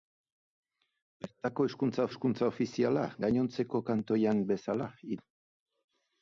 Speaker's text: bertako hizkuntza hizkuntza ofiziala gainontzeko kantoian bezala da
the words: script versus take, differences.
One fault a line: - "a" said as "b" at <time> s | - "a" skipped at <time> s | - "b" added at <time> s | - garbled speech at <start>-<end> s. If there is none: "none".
none